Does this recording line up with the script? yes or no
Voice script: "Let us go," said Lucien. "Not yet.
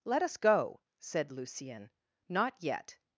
yes